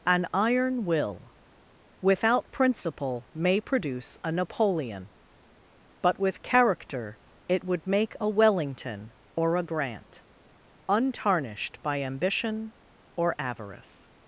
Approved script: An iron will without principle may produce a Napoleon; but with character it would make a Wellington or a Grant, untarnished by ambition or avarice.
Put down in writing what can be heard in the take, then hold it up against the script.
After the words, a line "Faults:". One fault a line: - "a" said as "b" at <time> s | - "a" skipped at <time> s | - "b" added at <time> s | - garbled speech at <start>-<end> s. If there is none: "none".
An iron will without principle may produce a Napoleon; but with character it would make a Wellington or a Grant, untarnished by ambition or avarice.
Faults:
none